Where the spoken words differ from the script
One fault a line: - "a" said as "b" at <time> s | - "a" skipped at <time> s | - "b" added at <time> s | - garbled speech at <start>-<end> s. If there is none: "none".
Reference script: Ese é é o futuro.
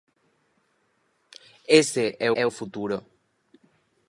none